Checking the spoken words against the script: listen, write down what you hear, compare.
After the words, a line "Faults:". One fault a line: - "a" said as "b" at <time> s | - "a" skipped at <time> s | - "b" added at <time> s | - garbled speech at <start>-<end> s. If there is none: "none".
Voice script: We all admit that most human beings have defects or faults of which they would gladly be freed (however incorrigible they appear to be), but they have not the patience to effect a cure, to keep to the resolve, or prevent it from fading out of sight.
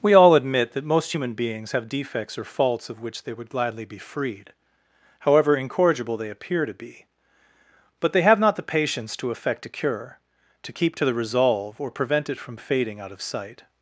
We all admit that most human beings have defects or faults of which they would gladly be freed (however incorrigible they appear to be), but they have not the patience to effect a cure, to keep to the resolve, or prevent it from fading out of sight.
Faults:
none